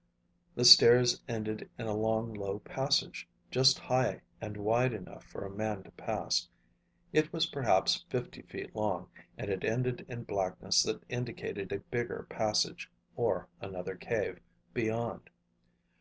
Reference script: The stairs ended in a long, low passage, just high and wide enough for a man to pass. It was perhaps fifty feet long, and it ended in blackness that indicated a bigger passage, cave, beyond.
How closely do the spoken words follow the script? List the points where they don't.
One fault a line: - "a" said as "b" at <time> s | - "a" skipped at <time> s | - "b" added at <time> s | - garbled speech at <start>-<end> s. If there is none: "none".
- "or another" added at 13.2 s